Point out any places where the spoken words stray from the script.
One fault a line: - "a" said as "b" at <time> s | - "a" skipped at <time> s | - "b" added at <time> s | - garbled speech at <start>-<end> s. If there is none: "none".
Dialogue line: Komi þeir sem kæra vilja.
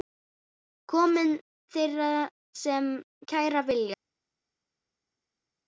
none